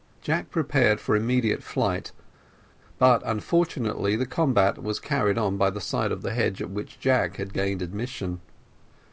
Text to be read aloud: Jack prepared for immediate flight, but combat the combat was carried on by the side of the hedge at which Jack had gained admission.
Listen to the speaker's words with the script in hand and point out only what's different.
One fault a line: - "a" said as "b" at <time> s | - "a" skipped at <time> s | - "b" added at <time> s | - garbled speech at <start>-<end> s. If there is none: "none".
- "combat" said as "unfortunately" at 3.2 s